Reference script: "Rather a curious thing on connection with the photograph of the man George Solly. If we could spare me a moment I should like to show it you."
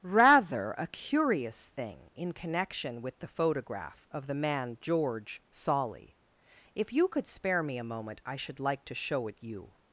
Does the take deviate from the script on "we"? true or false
true